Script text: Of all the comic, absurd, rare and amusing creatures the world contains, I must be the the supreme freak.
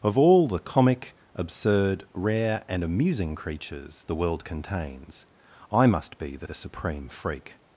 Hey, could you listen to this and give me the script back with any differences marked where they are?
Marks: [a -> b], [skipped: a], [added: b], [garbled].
Of all the comic, absurd, rare and amusing creatures the world contains, I must be the the supreme freak.